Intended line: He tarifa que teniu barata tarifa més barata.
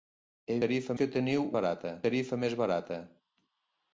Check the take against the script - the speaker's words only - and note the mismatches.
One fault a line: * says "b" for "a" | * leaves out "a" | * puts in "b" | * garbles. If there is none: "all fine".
all fine